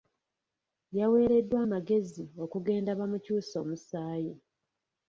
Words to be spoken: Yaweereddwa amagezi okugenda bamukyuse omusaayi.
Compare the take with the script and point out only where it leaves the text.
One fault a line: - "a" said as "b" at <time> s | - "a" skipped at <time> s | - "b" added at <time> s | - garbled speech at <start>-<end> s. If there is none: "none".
none